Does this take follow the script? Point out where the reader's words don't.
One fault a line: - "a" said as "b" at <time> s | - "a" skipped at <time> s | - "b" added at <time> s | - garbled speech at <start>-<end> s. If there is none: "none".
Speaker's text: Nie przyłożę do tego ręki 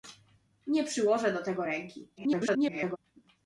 - garbled speech at 2.2-3.0 s